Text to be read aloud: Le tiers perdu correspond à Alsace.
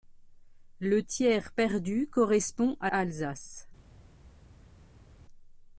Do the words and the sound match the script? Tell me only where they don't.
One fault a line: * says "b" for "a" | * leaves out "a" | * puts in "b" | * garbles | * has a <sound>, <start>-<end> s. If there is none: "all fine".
all fine